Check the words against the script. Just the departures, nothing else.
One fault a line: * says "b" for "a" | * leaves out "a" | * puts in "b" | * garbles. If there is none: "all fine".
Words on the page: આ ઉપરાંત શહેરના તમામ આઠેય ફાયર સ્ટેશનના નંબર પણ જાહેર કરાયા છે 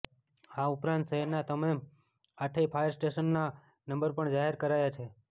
all fine